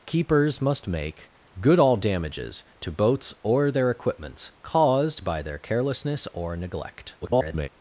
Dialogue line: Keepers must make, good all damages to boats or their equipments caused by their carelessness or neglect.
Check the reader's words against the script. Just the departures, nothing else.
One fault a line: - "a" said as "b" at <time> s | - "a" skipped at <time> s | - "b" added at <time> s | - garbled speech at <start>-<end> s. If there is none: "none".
- garbled speech at 7.2-7.7 s